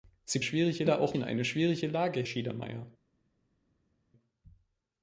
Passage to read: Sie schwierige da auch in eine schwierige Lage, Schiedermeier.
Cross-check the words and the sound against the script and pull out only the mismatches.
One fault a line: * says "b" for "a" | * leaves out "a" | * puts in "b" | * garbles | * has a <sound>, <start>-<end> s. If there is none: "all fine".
all fine